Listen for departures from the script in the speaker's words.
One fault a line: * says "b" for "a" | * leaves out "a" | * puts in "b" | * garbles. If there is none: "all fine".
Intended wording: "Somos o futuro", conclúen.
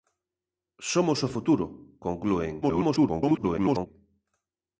* garbles